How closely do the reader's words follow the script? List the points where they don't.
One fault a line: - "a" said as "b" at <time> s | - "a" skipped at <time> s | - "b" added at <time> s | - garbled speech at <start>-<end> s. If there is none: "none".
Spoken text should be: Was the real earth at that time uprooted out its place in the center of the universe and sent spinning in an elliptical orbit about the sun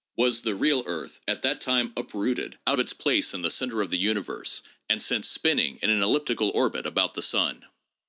none